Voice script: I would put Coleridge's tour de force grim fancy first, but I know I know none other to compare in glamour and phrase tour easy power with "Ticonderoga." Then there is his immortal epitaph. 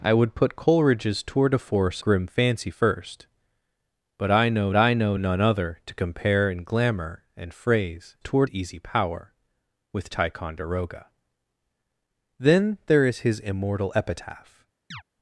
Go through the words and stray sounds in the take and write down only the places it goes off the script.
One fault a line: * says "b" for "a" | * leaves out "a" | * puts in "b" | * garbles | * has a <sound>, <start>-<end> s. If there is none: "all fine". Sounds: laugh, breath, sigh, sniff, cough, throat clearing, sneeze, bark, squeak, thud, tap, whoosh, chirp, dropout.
* has a chirp, 14.9-15.0 s